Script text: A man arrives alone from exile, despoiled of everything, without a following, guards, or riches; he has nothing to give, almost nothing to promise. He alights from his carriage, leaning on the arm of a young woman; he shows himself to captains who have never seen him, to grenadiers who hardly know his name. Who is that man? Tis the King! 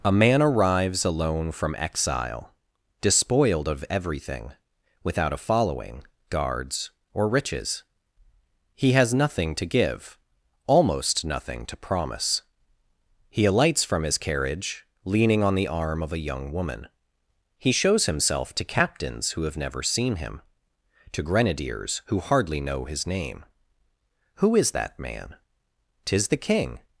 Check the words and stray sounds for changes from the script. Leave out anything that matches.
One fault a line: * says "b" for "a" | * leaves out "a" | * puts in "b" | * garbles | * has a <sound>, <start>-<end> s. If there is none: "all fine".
all fine